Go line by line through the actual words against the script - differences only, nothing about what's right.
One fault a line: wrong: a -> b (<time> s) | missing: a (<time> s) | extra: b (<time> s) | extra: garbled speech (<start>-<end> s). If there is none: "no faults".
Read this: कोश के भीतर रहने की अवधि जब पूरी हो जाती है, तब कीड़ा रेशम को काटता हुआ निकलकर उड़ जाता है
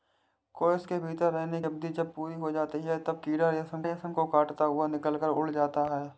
missing: की (1.6 s)
extra: रेशम (3.8 s)